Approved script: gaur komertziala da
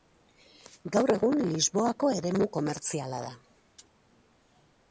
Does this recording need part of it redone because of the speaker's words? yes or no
yes